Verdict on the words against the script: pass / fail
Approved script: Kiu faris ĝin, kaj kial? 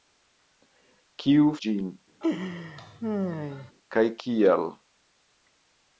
fail